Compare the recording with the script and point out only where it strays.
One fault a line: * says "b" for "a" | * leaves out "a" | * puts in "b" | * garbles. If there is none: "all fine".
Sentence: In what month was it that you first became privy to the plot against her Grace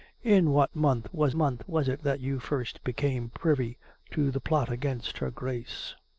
* puts in "month was"